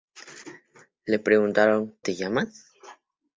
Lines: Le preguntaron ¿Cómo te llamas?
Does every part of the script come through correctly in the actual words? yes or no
no